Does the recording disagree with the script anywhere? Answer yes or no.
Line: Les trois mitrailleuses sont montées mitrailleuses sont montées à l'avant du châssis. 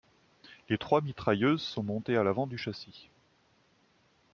yes